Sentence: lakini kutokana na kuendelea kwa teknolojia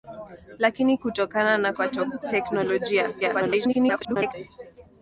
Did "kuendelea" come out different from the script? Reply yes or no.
yes